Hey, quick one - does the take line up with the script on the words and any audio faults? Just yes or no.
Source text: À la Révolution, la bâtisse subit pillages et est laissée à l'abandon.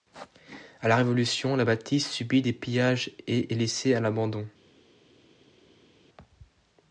no